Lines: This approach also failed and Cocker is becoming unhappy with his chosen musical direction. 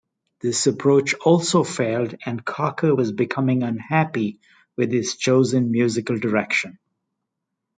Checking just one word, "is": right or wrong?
wrong